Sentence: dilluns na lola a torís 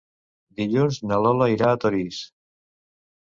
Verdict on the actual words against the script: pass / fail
fail